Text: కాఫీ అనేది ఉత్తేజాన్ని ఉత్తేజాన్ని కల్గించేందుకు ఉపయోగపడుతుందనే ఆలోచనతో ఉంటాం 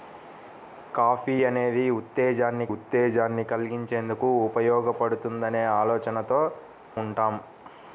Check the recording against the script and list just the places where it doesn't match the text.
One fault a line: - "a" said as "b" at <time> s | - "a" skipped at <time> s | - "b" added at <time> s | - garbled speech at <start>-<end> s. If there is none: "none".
none